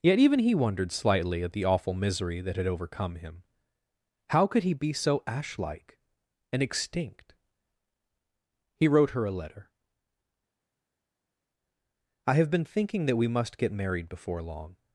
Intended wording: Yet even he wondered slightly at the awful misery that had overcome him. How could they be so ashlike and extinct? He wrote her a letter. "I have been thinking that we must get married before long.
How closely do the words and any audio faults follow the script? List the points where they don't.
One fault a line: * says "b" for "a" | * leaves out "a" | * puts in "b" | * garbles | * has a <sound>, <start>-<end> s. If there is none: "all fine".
* says "he" for "they"